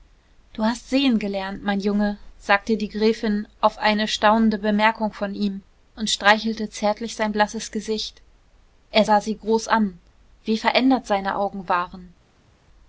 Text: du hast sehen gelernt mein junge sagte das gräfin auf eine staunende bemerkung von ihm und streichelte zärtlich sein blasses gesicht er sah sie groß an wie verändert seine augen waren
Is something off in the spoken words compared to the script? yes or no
yes